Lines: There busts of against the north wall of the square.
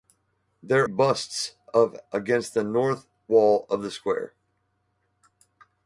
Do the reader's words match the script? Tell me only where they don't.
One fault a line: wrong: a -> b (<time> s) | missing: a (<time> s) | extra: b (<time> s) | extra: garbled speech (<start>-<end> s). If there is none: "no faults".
no faults